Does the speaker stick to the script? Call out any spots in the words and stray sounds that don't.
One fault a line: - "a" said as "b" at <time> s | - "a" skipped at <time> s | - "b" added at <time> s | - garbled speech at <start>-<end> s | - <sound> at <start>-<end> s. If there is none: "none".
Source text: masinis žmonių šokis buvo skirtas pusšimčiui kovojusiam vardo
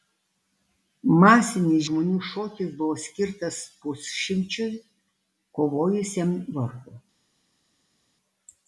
none